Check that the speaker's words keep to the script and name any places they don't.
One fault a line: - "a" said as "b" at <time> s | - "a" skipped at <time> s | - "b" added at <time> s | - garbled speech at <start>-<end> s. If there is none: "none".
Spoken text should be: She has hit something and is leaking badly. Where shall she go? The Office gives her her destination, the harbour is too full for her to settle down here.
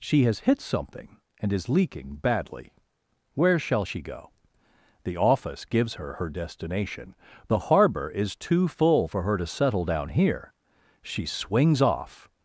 - "She swings off" added at 11.0 s